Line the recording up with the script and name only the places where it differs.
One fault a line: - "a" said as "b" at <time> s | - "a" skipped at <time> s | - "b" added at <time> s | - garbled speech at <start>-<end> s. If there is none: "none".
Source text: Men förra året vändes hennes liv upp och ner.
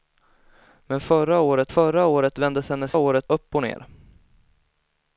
- "förra året" added at 1.7 s
- "liv" said as "året" at 3.0 s